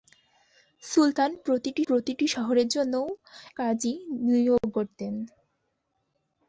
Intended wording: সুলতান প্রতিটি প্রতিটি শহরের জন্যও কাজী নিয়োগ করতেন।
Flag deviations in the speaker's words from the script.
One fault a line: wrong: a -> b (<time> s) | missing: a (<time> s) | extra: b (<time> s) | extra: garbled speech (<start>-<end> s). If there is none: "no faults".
no faults